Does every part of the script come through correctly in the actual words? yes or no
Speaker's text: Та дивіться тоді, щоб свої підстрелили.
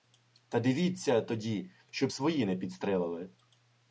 no